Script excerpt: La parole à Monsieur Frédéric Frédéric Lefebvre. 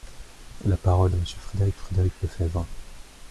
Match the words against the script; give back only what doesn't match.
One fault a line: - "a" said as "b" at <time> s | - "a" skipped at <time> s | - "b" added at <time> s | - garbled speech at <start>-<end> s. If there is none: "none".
none